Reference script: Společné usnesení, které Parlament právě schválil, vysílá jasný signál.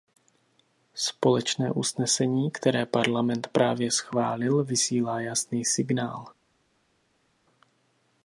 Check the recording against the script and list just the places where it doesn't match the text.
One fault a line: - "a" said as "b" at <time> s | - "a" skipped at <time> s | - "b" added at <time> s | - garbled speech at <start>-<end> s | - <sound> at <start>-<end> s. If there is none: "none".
none